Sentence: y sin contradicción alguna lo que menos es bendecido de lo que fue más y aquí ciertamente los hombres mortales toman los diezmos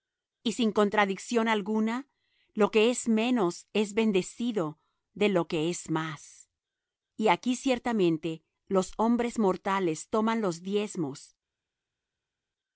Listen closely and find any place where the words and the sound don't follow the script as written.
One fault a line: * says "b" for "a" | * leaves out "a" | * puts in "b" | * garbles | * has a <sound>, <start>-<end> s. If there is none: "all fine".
* puts in "es"
* says "es" for "fue"